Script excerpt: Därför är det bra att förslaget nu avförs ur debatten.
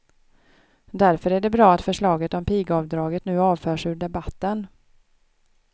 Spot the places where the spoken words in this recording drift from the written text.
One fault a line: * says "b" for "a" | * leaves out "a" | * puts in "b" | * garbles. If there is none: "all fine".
* puts in "om pigavdraget"